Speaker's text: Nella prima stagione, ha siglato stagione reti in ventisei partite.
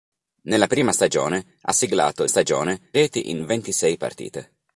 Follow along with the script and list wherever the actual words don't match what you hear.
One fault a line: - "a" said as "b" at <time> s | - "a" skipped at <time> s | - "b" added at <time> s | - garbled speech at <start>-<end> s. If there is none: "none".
none